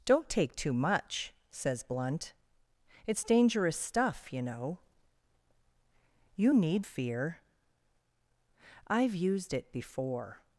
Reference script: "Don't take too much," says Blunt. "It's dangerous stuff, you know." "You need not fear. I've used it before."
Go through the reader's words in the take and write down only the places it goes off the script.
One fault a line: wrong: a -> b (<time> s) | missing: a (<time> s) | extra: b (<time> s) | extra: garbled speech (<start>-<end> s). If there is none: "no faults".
missing: not (6.9 s)